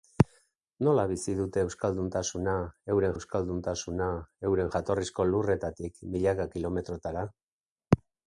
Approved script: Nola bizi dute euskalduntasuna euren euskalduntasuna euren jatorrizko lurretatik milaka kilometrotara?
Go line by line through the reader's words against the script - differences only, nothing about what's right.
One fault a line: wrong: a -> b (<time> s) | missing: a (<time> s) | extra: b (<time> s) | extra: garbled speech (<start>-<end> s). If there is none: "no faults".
no faults